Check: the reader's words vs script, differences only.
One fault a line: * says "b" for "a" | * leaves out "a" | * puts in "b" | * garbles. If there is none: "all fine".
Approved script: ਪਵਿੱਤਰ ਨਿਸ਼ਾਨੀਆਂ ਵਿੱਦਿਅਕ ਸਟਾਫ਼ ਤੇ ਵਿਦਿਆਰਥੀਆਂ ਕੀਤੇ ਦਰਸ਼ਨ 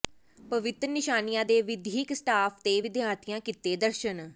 * puts in "ਦੇ"